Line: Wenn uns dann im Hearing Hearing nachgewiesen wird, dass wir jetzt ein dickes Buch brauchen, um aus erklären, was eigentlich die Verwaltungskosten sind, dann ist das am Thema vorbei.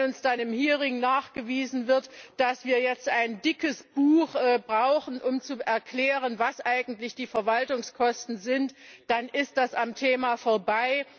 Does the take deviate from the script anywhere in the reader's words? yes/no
yes